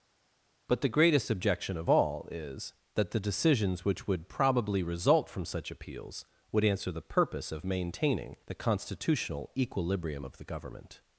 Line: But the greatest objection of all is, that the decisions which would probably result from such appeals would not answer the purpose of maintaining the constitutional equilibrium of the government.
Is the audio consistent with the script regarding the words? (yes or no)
no